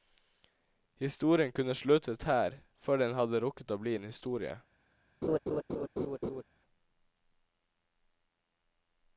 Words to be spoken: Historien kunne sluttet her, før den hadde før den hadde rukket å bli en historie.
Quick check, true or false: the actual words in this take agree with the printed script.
false